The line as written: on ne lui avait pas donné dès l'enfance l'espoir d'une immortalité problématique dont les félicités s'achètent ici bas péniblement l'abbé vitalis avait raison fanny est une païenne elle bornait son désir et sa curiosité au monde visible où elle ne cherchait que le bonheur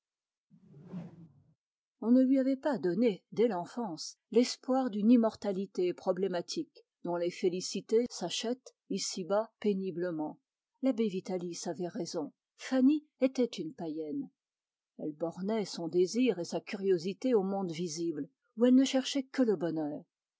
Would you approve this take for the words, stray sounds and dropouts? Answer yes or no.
no